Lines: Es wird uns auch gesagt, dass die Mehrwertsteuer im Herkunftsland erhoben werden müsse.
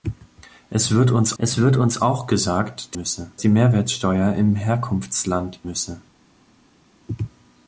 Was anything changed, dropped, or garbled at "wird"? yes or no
no